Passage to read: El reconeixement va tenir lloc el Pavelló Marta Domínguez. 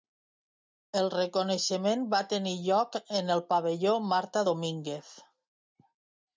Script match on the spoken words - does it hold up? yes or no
no